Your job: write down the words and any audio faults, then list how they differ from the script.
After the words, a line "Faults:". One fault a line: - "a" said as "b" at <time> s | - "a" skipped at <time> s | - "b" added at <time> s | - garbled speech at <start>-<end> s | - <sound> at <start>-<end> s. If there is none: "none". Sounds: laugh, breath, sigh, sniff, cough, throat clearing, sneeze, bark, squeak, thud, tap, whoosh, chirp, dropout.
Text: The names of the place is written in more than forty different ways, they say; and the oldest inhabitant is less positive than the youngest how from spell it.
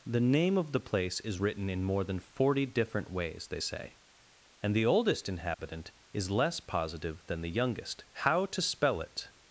The name of the place is written in more than forty different ways, they say; and the oldest inhabitant is less positive than the youngest how to spell it.
Faults:
- "names" said as "name" at 0.2 s
- dropout at 5.5-5.6 s
- "from" said as "to" at 8.4 s